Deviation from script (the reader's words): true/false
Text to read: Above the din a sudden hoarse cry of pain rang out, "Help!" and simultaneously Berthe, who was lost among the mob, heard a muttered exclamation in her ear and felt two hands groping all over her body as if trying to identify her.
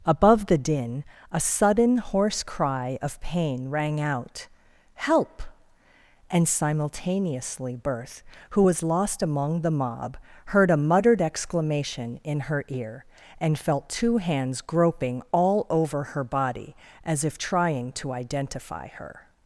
false